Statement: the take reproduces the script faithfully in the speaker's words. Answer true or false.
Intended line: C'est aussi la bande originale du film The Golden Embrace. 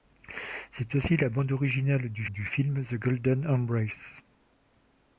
false